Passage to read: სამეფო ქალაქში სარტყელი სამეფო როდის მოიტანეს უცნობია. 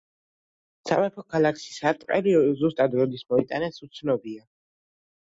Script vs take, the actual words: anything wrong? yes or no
yes